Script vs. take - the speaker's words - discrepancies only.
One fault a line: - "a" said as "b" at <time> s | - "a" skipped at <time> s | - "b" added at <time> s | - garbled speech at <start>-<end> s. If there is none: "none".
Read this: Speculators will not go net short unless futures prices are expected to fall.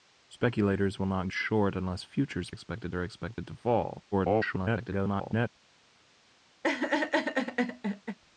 - "go net" skipped at 1.3 s
- "prices" said as "expected" at 2.5 s
- garbled speech at 4.1-5.5 s